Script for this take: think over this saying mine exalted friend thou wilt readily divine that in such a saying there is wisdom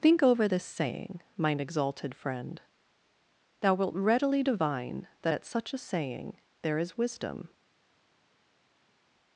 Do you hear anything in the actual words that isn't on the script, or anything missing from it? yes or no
yes